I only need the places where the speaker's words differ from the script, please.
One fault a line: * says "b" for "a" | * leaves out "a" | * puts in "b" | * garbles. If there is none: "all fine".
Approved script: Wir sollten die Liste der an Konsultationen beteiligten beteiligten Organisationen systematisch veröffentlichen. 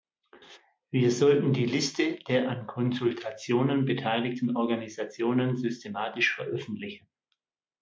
* leaves out "beteiligten"